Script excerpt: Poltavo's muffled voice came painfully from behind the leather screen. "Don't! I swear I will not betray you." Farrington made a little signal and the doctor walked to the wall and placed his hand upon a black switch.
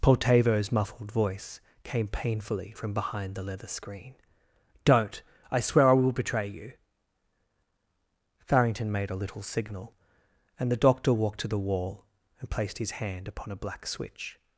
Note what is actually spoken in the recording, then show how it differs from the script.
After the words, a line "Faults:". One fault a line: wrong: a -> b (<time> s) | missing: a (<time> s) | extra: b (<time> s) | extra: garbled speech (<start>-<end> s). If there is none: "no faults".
Poltavo's muffled voice came painfully from behind the leather screen. "Don't! I swear I will betray you." Farrington made a little signal and the doctor walked to the wall and placed his hand upon a black switch.
Faults:
missing: not (6.1 s)